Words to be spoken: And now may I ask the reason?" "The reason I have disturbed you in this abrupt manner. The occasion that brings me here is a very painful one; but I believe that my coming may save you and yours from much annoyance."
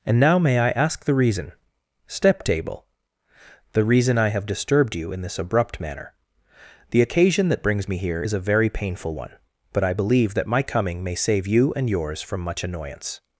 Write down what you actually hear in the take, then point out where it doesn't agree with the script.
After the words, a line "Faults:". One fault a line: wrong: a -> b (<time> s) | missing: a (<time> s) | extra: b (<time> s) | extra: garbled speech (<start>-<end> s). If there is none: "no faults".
And now may I ask the reason?" step table "The reason I have disturbed you in this abrupt manner. The occasion that brings me here is a very painful one; but I believe that my coming may save you and yours from much annoyance."
Faults:
extra: step table (2.1 s)